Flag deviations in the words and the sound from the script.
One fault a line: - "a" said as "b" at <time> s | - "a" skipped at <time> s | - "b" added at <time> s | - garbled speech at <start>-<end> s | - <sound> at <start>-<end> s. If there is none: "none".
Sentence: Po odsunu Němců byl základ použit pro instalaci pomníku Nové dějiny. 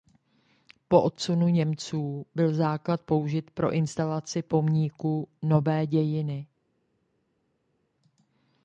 none